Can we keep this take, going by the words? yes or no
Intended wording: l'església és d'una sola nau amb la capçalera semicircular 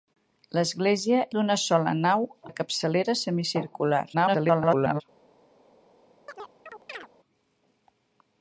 no